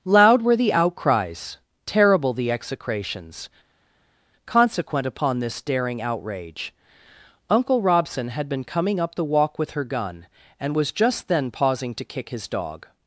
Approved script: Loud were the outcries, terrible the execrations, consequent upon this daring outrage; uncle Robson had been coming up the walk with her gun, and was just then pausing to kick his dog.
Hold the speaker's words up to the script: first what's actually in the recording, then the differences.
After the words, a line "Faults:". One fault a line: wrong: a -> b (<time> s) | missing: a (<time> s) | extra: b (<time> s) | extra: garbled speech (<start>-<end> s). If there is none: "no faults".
Loud were the outcries, terrible the execrations, consequent upon this daring outrage; uncle Robson had been coming up the walk with her gun, and was just then pausing to kick his dog.
Faults:
no faults